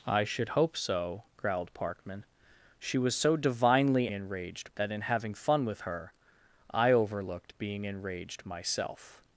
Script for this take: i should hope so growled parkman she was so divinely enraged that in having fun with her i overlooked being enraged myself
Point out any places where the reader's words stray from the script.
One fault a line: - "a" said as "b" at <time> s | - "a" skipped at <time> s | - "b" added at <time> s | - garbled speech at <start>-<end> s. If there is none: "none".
none